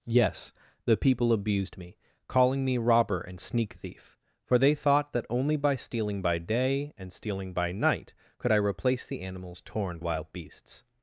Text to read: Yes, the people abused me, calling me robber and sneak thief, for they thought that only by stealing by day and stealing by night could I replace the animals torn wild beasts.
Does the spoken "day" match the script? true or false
true